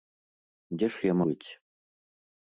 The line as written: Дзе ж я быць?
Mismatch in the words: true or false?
false